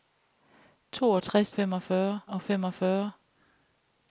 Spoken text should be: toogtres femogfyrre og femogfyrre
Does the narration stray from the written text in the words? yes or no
no